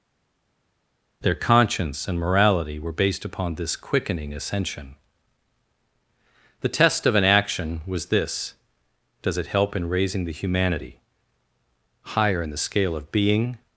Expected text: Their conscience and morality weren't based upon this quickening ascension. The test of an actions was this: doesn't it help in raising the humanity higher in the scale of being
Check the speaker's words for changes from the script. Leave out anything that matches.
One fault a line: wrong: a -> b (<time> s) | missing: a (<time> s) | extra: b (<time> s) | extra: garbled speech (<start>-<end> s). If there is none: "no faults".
wrong: weren't -> were (2.8 s)
wrong: actions -> action (7.2 s)
wrong: doesn't -> does (9.2 s)